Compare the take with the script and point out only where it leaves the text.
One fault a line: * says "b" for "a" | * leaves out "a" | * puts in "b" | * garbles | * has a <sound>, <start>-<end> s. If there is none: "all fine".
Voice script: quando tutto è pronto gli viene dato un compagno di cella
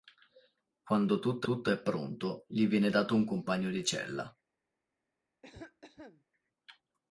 * puts in "tutto"
* has a cough, 5.4-6.2 s